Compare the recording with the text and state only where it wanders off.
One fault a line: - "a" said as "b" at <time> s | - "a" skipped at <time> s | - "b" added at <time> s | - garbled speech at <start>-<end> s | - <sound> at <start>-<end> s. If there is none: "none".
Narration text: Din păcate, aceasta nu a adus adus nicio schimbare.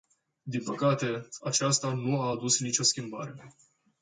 - "adus" skipped at 2.6 s